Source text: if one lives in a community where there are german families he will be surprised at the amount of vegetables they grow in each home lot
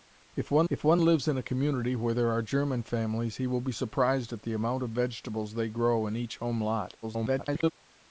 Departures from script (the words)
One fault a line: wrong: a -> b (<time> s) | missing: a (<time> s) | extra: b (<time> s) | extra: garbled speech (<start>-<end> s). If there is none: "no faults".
extra: if one (0.7 s)
extra: garbled speech (7.0-7.7 s)